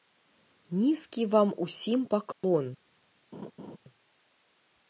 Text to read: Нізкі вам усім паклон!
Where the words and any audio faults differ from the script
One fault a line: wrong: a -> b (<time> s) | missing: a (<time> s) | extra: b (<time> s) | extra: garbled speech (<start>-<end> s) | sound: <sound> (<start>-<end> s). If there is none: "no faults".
sound: dropout (2.3-2.4 s)
sound: laugh (3.3-3.8 s)